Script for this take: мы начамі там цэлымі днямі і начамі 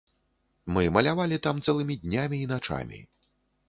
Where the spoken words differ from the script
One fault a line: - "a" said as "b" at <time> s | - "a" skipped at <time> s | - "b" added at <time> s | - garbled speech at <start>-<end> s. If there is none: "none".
- "начамі" said as "малявалі" at 0.9 s